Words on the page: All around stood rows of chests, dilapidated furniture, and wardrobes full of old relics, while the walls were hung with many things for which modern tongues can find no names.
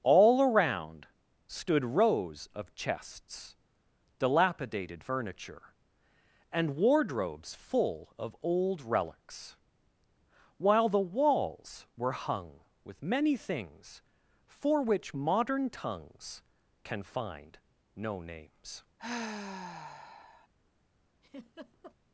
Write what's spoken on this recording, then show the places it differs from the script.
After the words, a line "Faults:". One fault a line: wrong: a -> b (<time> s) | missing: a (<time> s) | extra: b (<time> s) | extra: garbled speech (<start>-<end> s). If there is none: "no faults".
All around stood rows of chests, dilapidated furniture, and wardrobes full of old relics, while the walls were hung with many things for which modern tongues can find no names.
Faults:
no faults